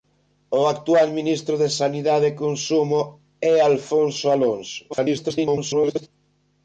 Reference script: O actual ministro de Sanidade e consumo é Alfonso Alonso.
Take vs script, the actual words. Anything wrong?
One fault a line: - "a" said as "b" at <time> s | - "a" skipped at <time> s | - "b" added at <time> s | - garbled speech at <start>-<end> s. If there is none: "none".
- garbled speech at 4.9-6.1 s